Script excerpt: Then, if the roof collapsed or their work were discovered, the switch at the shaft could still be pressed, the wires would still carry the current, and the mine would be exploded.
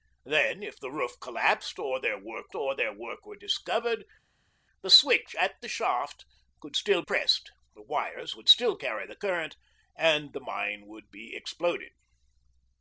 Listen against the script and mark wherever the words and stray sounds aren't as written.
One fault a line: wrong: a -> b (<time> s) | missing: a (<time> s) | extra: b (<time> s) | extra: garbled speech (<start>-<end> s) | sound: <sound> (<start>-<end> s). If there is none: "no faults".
extra: or their work (2.5 s)
missing: be (7.0 s)